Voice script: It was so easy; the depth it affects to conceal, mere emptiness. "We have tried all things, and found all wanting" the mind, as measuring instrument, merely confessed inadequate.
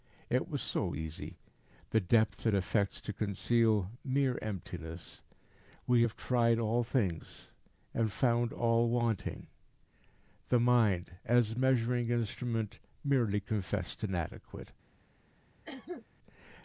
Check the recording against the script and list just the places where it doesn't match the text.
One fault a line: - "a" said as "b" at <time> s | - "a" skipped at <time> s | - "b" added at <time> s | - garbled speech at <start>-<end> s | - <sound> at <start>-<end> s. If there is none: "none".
- cough at 15.6-16.1 s